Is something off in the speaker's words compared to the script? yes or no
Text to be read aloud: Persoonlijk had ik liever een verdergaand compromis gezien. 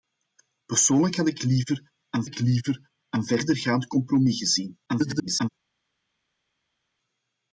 yes